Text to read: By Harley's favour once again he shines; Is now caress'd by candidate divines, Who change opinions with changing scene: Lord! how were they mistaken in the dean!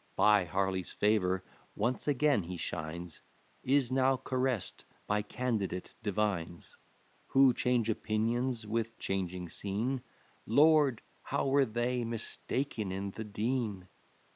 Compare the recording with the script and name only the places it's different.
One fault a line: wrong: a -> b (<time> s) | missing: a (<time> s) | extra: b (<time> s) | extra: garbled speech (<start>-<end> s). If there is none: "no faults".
no faults